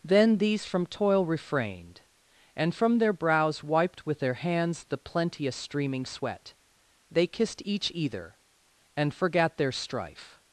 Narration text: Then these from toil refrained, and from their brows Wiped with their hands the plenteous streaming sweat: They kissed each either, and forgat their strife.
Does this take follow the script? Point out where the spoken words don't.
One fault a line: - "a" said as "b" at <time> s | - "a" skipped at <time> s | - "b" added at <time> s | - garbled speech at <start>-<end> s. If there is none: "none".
none